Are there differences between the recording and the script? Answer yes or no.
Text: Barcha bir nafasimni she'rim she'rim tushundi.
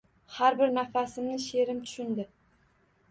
yes